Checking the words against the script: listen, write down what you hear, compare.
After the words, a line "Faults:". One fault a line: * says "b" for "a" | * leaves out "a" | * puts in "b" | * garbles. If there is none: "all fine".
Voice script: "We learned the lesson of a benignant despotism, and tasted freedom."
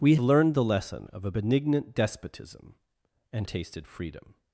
"We learned the lesson of a benignant despotism, and tasted freedom."
Faults:
all fine